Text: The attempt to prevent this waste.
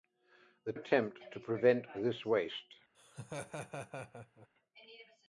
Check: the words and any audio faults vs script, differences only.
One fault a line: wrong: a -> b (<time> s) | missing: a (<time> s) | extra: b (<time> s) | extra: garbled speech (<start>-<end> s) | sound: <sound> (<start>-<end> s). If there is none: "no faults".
sound: laugh (2.9-4.5 s)